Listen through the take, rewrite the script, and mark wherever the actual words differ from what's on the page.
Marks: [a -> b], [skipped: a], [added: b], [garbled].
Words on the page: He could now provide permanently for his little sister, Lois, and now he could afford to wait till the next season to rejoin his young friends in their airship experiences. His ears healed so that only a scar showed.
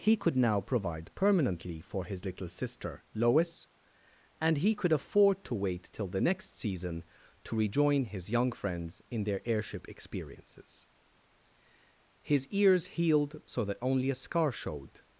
He could now provide permanently for his little sister, Lois, and [skipped: now] he could afford to wait till the next season to rejoin his young friends in their airship experiences. His ears healed so that only a scar showed.